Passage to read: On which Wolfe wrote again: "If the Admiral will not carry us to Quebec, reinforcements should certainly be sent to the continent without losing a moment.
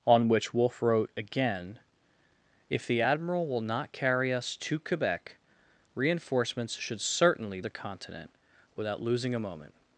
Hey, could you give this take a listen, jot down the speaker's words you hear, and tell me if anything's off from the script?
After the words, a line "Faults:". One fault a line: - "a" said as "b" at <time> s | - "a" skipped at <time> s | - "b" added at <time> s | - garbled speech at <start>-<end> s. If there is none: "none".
On which Wolfe wrote again: "If the Admiral will not carry us to Quebec, reinforcements should certainly the continent without losing a moment.
Faults:
- "be sent to" skipped at 7.6 s